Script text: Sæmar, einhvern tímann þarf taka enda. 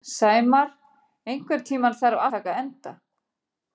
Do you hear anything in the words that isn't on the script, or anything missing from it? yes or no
no